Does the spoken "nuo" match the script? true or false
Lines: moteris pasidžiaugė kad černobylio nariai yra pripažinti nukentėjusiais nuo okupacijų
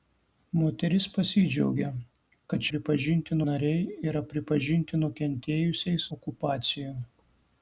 false